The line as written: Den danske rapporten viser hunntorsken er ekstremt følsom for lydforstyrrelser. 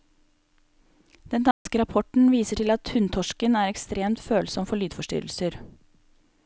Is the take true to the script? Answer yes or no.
no